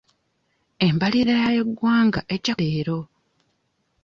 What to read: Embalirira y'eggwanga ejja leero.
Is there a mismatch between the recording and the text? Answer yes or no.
no